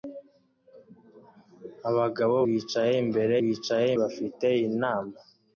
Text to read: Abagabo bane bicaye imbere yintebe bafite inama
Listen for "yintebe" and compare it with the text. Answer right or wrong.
wrong